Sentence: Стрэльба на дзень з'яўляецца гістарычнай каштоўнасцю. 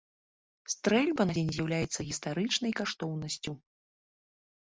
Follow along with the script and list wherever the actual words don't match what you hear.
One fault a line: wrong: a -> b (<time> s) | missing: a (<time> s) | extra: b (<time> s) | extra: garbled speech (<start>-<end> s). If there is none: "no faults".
no faults